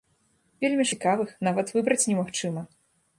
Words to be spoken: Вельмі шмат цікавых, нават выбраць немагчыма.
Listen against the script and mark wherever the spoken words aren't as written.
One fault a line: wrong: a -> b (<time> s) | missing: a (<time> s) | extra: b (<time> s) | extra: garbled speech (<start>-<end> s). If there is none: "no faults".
missing: шмат (0.8 s)